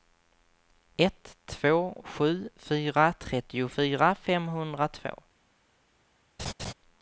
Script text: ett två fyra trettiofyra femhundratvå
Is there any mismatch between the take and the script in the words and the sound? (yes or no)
yes